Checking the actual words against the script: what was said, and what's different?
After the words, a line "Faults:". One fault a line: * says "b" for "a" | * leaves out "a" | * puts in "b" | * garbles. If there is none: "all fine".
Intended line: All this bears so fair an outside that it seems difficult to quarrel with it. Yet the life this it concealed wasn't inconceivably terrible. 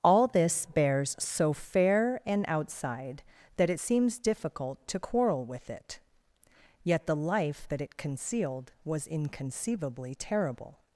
All this bears so fair an outside that it seems difficult to quarrel with it. Yet the life that it concealed was inconceivably terrible.
Faults:
* says "that" for "this"
* says "was" for "wasn't"